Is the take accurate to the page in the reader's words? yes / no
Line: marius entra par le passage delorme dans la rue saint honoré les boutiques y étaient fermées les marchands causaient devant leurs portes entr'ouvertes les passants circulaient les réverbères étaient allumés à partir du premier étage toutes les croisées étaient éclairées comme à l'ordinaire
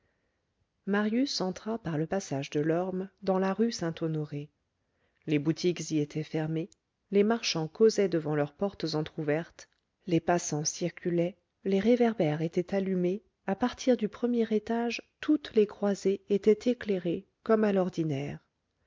yes